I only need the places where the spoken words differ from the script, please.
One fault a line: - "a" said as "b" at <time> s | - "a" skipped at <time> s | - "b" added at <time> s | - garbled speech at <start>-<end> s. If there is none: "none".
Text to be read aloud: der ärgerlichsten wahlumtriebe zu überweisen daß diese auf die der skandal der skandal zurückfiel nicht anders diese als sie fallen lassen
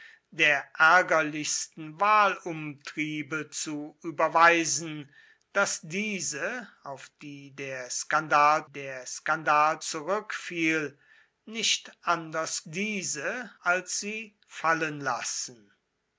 none